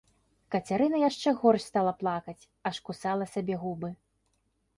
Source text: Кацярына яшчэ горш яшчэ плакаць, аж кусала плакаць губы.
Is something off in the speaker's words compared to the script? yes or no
yes